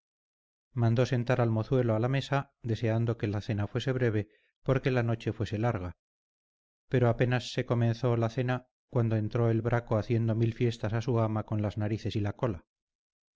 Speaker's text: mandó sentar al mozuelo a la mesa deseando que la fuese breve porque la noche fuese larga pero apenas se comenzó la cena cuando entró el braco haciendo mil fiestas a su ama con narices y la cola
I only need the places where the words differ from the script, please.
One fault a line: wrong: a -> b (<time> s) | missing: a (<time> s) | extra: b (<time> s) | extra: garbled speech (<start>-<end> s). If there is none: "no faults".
extra: cena (3.4 s)
extra: las (11.6 s)